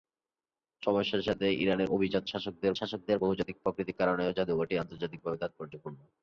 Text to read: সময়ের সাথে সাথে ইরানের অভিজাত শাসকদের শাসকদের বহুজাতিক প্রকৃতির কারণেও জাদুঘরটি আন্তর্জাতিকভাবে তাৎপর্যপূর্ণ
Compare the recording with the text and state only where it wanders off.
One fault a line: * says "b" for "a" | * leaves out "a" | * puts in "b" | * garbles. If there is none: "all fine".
all fine